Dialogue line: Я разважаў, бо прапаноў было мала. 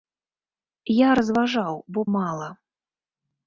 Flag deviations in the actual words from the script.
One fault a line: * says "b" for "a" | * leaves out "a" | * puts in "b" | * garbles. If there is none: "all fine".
* leaves out "прапаноў было"